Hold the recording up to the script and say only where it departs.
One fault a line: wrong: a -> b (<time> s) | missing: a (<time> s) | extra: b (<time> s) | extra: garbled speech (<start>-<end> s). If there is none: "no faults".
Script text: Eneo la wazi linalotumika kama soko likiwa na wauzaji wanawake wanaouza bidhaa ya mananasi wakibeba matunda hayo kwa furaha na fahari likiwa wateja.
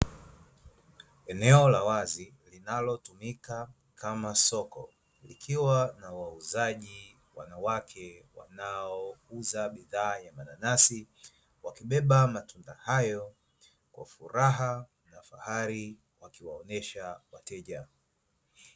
wrong: likiwa -> wakiwaonyesha (16.2 s)